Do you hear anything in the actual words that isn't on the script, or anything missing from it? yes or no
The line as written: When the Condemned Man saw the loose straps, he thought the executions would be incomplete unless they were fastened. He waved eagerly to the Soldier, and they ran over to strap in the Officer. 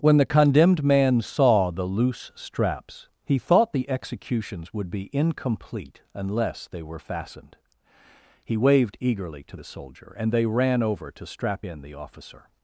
no